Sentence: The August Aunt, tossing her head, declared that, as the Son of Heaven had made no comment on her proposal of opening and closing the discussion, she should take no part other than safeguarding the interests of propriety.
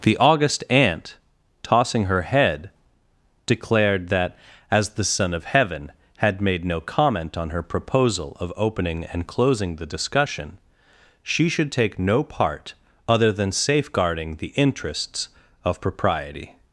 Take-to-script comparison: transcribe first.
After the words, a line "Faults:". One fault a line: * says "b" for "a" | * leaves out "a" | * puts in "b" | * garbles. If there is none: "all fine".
The August Aunt, tossing her head, declared that, as the Son of Heaven had made no comment on her proposal of opening and closing the discussion, she should take no part other than safeguarding the interests of propriety.
Faults:
all fine